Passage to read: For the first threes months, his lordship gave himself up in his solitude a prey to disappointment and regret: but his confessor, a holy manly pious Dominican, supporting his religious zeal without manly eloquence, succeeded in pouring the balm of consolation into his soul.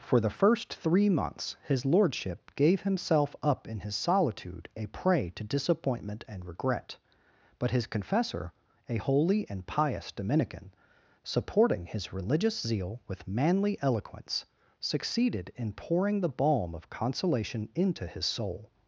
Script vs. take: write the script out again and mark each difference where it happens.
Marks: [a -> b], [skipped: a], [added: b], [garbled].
For the first [threes -> three] months, his lordship gave himself up in his solitude a prey to disappointment and regret: but his confessor, a holy [manly -> and] pious Dominican, supporting his religious zeal [without -> with] manly eloquence, succeeded in pouring the balm of consolation into his soul.